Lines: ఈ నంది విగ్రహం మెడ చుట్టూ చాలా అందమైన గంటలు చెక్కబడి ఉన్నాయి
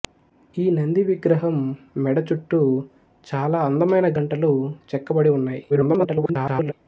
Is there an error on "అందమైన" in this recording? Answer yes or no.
no